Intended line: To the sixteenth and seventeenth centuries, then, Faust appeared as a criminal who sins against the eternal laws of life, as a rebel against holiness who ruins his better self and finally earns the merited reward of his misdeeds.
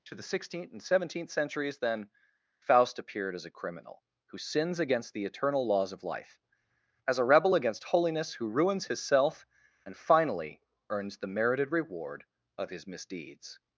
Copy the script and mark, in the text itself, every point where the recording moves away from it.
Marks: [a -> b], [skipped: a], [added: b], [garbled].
To the sixteenth and seventeenth centuries, then, Faust appeared as a criminal who sins against the eternal laws of life, as a rebel against holiness who ruins his [skipped: better] self and finally earns the merited reward of his misdeeds.